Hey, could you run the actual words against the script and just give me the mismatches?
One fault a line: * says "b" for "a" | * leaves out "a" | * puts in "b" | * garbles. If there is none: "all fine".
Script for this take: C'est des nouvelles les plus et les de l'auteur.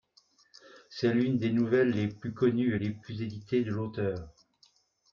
* puts in "l'une"
* puts in "connues"
* puts in "plus éditées"